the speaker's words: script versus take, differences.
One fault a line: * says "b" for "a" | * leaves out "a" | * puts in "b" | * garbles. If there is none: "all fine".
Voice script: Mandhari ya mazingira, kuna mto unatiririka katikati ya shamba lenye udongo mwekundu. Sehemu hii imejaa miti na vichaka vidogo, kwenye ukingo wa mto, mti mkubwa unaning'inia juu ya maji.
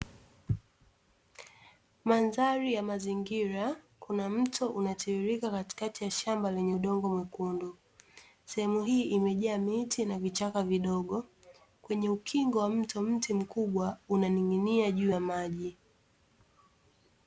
all fine